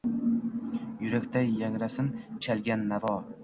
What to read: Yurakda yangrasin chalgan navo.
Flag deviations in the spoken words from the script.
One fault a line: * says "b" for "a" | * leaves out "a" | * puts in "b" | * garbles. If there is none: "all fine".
all fine